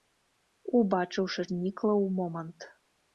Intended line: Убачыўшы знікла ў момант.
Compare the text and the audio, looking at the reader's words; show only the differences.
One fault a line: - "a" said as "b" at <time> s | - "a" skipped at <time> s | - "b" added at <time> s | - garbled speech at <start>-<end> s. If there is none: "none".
none